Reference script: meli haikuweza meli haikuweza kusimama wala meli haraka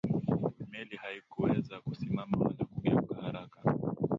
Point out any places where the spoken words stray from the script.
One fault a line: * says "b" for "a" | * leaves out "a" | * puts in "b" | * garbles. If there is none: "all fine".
* leaves out "meli haikuweza"
* says "kugeuka" for "meli"